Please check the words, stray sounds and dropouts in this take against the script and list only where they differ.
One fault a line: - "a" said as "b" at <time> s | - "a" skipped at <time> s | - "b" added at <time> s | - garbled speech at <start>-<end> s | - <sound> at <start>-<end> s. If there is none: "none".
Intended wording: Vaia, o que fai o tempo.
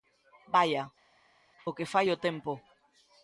none